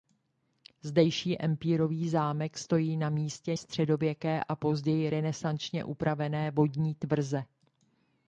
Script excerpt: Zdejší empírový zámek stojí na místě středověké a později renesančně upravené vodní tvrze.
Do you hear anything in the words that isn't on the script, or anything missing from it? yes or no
no